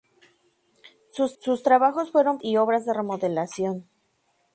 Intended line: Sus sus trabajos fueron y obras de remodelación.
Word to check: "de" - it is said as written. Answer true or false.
true